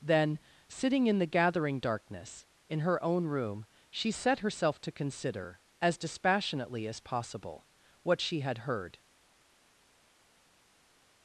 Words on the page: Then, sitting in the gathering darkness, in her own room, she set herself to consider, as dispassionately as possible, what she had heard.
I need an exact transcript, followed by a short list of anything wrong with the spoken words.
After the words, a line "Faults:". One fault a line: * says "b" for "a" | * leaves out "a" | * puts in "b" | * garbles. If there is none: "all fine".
Then, sitting in the gathering darkness, in her own room, she set herself to consider, as dispassionately as possible, what she had heard.
Faults:
all fine